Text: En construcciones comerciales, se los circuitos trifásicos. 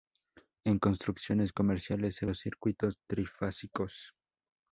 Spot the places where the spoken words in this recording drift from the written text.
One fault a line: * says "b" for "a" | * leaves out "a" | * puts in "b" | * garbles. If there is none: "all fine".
all fine